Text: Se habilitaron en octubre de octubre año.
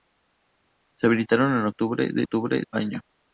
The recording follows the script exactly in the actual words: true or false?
true